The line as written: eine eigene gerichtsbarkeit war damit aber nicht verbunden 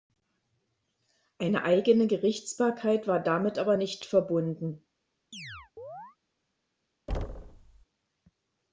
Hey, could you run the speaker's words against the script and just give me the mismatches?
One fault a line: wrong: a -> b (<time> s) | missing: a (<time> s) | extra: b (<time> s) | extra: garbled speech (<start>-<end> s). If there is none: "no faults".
no faults